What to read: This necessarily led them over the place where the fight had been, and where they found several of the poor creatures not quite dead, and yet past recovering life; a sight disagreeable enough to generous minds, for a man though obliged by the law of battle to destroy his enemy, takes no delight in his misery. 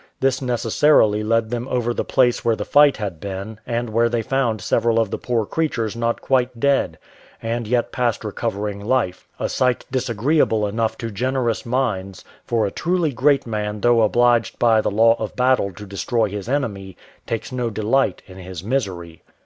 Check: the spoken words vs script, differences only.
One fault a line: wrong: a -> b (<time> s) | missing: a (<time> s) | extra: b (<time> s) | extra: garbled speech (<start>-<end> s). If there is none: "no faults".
extra: truly great (12.7 s)